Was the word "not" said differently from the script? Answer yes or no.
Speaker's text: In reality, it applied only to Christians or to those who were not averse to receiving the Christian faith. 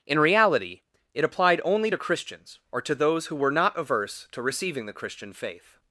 no